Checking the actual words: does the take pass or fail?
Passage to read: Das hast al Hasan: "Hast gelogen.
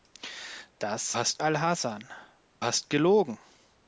pass